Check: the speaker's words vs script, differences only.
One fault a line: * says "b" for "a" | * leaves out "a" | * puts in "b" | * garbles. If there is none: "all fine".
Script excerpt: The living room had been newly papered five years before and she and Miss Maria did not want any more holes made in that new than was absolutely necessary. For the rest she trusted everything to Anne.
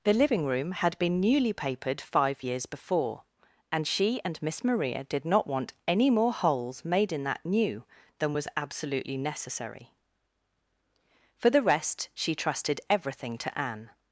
all fine